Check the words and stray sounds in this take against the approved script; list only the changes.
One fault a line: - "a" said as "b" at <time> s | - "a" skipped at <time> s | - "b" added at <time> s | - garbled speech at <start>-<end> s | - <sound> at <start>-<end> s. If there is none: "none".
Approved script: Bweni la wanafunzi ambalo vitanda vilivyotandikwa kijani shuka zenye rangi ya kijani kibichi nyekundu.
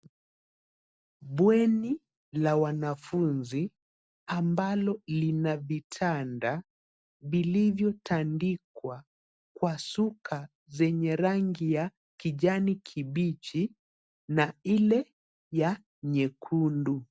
- "lina" added at 5.1 s
- "kijani" said as "kwa" at 9.6 s
- "na ile ya" added at 14.3 s